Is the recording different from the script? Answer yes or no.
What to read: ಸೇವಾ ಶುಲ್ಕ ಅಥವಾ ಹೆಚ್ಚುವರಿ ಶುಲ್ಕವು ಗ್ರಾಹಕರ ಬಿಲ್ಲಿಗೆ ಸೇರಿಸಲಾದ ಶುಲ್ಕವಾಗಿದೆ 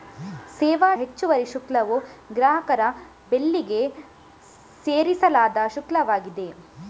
yes